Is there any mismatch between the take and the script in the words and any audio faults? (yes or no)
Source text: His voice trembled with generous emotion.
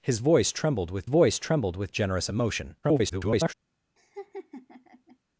yes